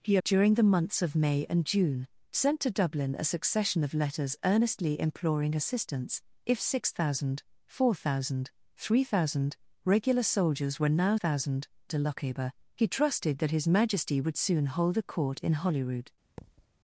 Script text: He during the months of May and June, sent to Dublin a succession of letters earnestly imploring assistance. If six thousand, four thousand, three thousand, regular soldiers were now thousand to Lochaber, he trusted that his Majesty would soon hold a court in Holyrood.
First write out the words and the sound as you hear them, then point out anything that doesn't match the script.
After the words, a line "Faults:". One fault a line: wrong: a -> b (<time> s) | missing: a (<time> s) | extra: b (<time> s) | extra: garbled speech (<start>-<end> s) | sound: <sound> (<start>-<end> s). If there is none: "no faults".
He during the months of May and June, sent to Dublin a succession of letters earnestly imploring assistance. If six thousand, four thousand, three thousand, regular soldiers were now thousand to Lochaber, he trusted that his Majesty would soon hold a court in Holyrood.
Faults:
sound: thud (16.4-16.7 s)